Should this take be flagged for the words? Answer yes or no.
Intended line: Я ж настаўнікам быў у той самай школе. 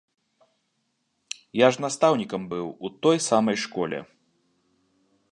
no